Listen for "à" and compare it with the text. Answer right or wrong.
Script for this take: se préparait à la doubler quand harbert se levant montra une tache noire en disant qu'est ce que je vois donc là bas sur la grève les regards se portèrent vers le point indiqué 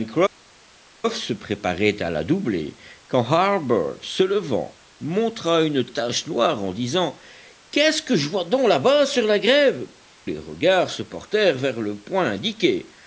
right